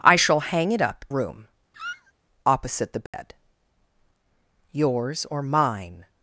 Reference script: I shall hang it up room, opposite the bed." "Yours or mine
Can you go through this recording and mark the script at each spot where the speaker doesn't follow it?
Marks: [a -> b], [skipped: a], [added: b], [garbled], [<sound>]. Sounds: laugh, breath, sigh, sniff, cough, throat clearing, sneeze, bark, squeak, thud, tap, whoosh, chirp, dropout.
I shall hang it up room, [squeak] opposite the bed." [dropout] "Yours or mine